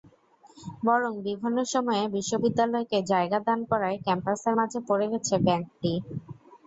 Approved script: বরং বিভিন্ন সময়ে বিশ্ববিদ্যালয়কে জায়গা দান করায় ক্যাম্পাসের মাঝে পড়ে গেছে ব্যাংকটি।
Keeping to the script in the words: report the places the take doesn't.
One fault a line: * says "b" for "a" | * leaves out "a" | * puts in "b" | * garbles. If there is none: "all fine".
all fine